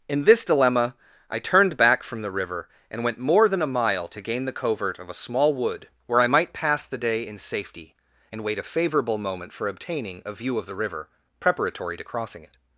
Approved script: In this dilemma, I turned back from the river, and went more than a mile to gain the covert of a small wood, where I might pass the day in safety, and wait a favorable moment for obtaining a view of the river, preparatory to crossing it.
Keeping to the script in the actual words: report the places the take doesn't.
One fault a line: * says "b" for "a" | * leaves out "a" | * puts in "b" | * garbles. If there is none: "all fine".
all fine